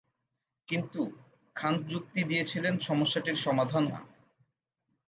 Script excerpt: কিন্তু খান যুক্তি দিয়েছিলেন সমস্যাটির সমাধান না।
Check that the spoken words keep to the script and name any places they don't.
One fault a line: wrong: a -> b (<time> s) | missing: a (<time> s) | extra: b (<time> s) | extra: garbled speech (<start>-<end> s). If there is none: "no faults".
no faults